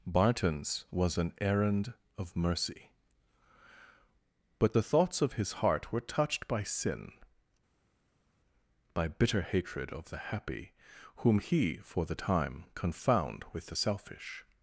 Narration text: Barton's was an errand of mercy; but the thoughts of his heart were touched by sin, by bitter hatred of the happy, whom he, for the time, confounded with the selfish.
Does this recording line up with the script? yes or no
no